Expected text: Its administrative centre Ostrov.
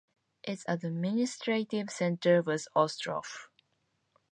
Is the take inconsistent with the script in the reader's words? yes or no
yes